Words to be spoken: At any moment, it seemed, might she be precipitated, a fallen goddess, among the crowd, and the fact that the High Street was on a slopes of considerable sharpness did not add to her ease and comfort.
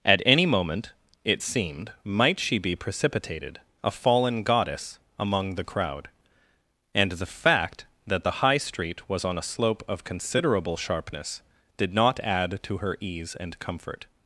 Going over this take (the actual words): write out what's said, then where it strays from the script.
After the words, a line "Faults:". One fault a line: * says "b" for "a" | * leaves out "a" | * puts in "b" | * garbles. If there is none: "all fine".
At any moment, it seemed, might she be precipitated, a fallen goddess, among the crowd, and the fact that the High Street was on a slope of considerable sharpness did not add to her ease and comfort.
Faults:
* says "slope" for "slopes"